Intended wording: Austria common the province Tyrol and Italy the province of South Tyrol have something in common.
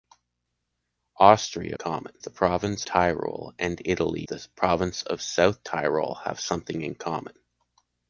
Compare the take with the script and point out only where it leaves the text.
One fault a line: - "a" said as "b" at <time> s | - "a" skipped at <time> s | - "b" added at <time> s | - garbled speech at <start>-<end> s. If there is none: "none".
none